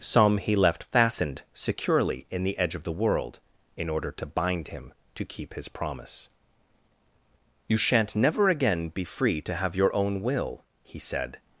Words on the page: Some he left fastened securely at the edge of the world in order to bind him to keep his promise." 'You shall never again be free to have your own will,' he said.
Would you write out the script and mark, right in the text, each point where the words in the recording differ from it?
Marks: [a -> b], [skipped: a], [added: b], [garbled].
Some he left fastened securely [at -> in] the edge of the world in order to bind him to keep his promise." 'You [shall -> shan't] never again be free to have your own will,' he said.